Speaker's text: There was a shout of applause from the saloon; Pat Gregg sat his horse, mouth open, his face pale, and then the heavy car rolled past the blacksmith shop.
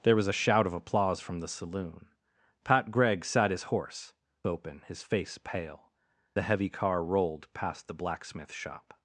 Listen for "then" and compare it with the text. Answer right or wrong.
wrong